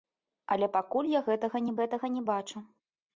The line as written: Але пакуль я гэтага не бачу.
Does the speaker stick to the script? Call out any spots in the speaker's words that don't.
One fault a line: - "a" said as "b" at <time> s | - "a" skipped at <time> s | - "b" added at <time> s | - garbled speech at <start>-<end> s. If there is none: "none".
- "гэтага не" added at 1.8 s